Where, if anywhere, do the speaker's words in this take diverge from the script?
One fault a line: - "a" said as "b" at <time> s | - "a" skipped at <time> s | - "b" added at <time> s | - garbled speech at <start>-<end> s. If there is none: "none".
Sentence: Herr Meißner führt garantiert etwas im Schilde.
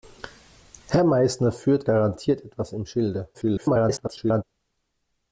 - garbled speech at 3.3-4.4 s